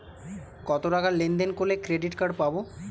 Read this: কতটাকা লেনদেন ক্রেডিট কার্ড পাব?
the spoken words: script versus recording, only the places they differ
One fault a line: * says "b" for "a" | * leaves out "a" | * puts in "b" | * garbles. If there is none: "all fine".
* puts in "করলে"